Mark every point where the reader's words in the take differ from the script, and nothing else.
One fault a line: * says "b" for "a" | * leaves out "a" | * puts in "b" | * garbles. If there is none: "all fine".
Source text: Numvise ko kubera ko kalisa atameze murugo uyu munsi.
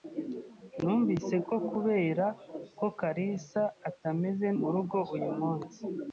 all fine